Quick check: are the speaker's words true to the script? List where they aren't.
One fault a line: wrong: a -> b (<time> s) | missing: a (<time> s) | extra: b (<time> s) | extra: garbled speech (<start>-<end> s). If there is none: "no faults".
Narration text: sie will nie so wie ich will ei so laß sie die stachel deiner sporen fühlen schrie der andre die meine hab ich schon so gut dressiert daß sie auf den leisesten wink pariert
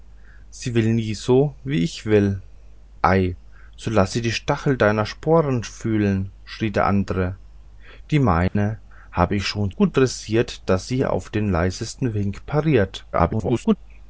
missing: so (9.7 s)
extra: garbled speech (13.1-13.8 s)